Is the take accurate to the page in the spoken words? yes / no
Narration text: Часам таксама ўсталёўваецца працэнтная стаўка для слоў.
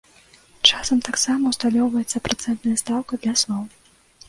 yes